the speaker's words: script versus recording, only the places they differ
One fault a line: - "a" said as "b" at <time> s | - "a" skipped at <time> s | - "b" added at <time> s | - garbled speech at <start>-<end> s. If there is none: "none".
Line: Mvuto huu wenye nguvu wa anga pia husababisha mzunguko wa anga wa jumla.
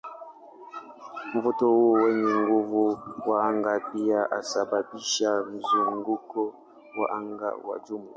none